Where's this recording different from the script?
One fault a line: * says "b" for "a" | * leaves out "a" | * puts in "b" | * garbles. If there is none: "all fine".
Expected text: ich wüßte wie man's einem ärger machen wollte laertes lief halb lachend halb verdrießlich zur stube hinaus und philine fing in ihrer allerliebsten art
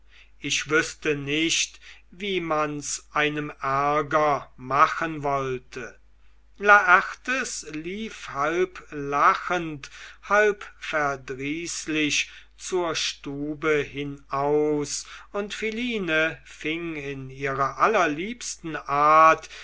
* puts in "nicht"